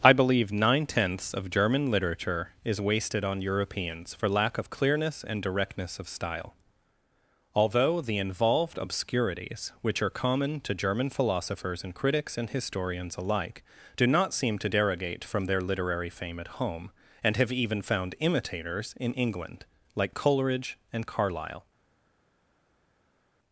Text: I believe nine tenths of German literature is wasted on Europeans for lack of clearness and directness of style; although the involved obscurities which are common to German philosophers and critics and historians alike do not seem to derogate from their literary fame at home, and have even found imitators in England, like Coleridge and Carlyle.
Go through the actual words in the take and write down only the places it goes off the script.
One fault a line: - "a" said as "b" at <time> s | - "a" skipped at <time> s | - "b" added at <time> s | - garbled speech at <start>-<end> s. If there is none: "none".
none